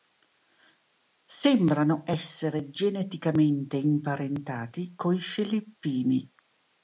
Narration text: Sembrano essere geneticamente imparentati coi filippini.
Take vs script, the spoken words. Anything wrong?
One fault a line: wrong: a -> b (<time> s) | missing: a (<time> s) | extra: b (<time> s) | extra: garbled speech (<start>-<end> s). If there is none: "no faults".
no faults